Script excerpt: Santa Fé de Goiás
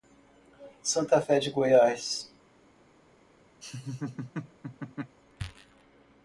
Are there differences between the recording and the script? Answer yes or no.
no